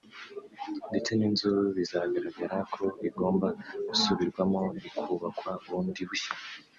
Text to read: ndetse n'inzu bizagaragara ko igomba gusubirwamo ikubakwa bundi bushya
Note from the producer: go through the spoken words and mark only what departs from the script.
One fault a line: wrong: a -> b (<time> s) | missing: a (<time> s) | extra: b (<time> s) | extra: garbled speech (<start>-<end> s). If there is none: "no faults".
no faults